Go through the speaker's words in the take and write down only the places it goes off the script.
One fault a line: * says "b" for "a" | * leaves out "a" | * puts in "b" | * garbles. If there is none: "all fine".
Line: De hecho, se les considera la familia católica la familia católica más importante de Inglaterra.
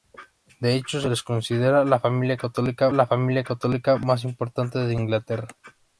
all fine